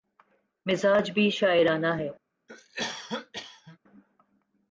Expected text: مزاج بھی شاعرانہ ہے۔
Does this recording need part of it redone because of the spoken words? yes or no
no